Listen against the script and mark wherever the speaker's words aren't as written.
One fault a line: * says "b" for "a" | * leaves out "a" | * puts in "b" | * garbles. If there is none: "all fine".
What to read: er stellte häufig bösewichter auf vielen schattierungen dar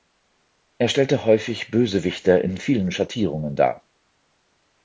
* says "in" for "auf"